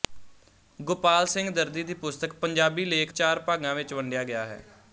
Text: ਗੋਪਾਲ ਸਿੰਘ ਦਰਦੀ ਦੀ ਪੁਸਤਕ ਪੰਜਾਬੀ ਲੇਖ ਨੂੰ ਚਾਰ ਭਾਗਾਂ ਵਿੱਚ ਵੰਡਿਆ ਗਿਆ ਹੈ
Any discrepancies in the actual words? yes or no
yes